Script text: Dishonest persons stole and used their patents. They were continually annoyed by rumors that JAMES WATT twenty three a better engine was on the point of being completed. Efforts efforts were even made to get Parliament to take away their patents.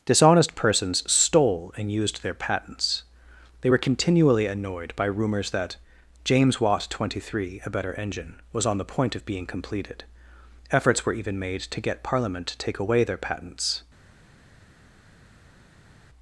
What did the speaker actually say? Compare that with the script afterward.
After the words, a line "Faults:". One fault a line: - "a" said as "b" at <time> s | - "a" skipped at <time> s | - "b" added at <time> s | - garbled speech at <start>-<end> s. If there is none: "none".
Dishonest persons stole and used their patents. They were continually annoyed by rumors that JAMES WATT twenty three a better engine was on the point of being completed. Efforts were even made to get Parliament to take away their patents.
Faults:
- "efforts" skipped at 11.0 s